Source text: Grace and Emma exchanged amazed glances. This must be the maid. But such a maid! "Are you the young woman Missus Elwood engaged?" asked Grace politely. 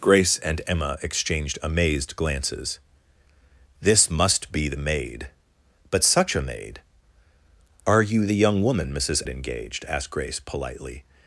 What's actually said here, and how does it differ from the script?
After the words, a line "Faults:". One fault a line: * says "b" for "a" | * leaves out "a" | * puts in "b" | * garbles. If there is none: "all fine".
Grace and Emma exchanged amazed glances. This must be the maid. But such a maid! "Are you the young woman Missus Engaged?" asked Grace politely.
Faults:
* leaves out "Elwood"